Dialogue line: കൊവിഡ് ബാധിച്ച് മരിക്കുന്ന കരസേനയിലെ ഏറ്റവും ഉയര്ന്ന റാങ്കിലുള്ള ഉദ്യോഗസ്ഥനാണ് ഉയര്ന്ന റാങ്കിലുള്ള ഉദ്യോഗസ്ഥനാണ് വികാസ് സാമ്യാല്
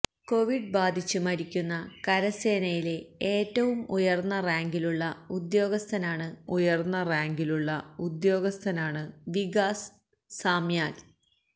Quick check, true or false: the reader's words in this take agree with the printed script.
true